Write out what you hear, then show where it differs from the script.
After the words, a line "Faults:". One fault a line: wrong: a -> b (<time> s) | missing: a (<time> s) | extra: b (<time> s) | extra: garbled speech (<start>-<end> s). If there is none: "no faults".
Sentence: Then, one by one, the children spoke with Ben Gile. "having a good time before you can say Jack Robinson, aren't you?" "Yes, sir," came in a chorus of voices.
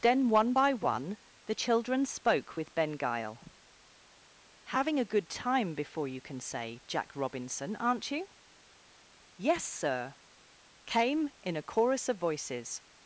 Then, one by one, the children spoke with Ben Gile. "having a good time before you can say Jack Robinson, aren't you?" "Yes, sir," came in a chorus of voices.
Faults:
no faults